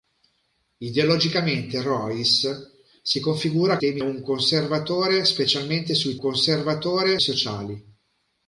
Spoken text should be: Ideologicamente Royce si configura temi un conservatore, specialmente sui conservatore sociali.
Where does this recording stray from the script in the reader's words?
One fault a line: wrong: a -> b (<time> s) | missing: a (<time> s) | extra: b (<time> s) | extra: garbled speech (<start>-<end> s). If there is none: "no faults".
no faults